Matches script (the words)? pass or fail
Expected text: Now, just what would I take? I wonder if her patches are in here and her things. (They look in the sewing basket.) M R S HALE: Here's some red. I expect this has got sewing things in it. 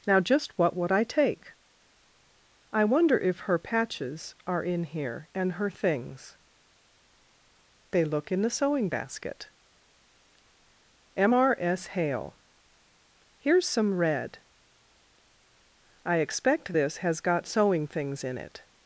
pass